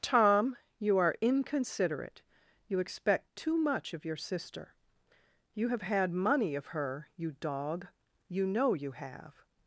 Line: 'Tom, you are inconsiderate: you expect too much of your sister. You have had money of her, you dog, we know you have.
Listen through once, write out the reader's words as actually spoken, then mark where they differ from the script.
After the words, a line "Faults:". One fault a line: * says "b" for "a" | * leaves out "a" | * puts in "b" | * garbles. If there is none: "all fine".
'Tom, you are inconsiderate: you expect too much of your sister. You have had money of her, you dog, you know you have.
Faults:
* says "you" for "we"